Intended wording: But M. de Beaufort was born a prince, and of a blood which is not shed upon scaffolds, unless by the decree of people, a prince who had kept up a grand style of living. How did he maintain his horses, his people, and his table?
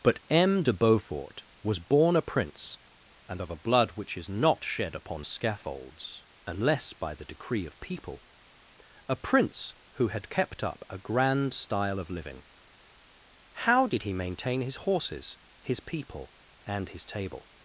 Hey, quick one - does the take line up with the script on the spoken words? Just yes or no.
yes